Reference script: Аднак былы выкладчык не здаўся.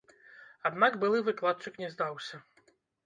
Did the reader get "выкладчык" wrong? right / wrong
right